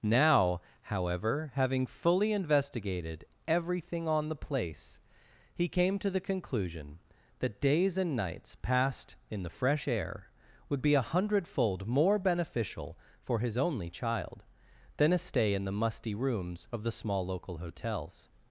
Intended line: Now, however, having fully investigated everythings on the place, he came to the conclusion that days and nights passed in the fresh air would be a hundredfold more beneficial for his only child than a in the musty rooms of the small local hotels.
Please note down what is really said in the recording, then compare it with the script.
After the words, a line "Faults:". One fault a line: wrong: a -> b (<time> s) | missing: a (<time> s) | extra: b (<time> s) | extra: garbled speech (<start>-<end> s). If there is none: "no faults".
Now, however, having fully investigated everything on the place, he came to the conclusion that days and nights passed in the fresh air would be a hundredfold more beneficial for his only child than a stay in the musty rooms of the small local hotels.
Faults:
wrong: everythings -> everything (3.5 s)
extra: stay (15.2 s)